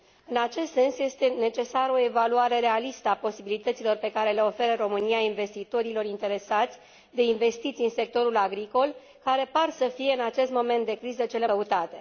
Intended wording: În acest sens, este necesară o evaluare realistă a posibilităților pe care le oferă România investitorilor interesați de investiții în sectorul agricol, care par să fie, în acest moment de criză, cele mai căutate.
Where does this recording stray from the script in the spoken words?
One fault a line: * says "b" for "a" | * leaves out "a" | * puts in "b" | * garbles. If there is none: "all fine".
* leaves out "mai"